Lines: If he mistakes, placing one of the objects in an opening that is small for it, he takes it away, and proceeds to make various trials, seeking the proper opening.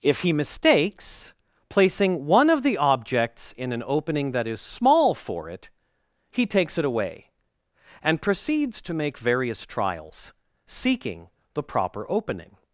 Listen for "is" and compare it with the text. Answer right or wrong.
right